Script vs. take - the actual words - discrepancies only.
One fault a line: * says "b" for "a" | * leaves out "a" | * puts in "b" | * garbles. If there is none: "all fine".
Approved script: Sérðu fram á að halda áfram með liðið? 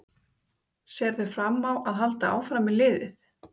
all fine